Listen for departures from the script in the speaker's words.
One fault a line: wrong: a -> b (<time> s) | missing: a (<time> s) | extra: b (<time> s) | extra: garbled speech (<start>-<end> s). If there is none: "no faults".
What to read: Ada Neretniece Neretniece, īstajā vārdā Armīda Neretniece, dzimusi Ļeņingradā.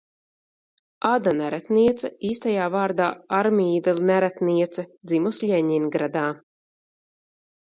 missing: Neretniece (2.1 s)